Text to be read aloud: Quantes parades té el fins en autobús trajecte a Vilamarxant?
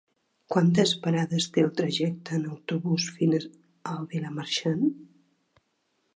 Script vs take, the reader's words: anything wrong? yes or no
yes